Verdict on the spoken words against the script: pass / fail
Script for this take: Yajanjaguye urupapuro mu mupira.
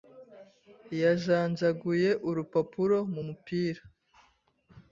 pass